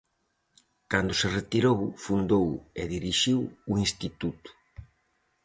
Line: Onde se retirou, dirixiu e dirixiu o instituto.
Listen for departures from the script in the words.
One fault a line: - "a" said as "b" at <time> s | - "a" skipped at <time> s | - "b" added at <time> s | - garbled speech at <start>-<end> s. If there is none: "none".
- "Onde" said as "Cando" at 0.9 s
- "dirixiu" said as "fundou" at 2.0 s